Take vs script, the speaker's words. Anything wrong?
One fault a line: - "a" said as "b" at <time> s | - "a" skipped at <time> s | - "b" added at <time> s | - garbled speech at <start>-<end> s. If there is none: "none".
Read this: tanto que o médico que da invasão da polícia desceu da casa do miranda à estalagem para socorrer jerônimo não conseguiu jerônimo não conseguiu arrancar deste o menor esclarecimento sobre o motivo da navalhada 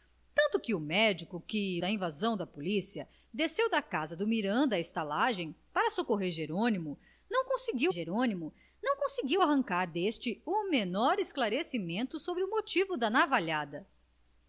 none